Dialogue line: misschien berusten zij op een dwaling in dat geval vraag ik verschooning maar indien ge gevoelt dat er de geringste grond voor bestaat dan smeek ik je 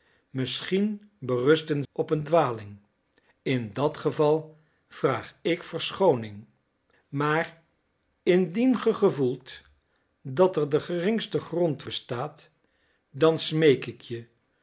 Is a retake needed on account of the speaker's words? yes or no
yes